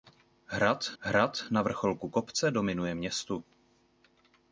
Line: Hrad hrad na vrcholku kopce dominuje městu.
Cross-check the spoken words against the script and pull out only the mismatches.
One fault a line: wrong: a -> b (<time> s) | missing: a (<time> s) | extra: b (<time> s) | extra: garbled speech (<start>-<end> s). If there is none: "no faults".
no faults